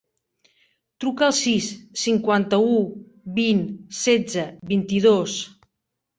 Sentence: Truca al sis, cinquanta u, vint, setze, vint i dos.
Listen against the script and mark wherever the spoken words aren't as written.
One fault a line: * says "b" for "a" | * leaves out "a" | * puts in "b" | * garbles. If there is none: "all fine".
all fine